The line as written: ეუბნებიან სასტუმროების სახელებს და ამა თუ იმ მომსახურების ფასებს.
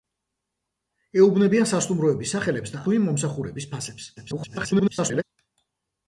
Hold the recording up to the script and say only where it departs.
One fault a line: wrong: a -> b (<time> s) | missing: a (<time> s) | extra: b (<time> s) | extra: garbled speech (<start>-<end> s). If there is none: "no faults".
missing: ამა (2.8 s)
extra: garbled speech (4.2-5.2 s)